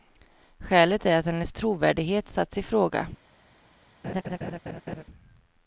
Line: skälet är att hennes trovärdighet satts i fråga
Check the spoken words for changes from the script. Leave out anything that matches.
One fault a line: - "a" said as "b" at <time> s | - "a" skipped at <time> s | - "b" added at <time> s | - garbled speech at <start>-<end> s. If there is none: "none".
none